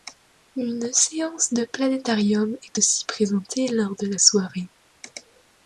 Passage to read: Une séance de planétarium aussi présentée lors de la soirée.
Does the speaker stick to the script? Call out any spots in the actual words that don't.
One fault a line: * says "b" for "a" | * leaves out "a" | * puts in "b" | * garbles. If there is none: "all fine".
* puts in "est"